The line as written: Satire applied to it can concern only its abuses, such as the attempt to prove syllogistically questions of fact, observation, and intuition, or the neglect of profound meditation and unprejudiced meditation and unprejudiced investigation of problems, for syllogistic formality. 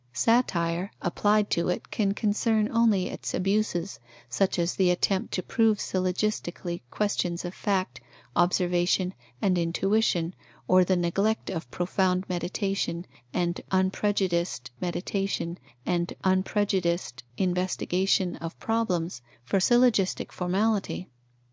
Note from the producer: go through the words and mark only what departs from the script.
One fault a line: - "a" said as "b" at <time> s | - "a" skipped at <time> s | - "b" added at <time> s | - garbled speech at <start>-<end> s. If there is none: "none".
none